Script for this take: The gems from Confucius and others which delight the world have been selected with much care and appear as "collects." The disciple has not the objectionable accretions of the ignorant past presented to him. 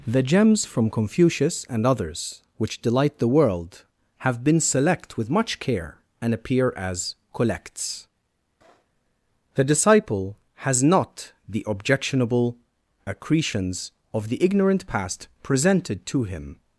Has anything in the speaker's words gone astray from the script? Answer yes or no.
yes